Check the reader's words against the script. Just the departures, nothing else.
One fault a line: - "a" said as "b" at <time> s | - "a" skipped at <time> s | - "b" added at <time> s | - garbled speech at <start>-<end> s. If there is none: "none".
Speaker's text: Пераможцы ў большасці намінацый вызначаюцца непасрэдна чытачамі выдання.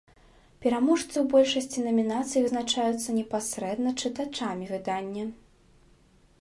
none